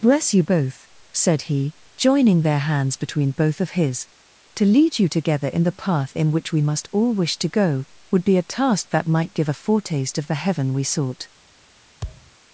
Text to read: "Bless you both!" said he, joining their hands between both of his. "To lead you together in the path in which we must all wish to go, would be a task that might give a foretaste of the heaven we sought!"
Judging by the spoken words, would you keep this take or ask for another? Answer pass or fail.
pass